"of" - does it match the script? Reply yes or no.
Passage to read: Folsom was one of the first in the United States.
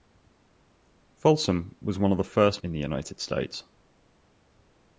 yes